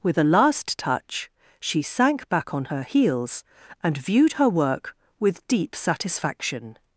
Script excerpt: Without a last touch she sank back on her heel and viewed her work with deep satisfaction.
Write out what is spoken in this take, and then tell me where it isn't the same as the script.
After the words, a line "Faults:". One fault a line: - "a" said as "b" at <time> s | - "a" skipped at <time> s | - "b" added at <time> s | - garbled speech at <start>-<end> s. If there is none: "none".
With a last touch she sank back on her heels and viewed her work with deep satisfaction.
Faults:
- "Without" said as "With" at 0.0 s
- "heel" said as "heels" at 2.8 s